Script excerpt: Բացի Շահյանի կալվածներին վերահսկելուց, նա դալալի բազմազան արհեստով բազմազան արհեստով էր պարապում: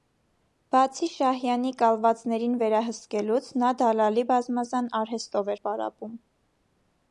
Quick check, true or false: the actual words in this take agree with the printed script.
false